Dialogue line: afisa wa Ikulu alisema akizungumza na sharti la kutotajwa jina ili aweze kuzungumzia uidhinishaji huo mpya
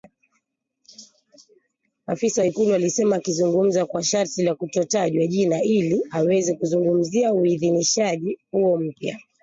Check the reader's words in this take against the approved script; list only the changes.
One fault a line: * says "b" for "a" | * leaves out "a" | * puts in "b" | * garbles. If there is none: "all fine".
* says "kwa" for "na"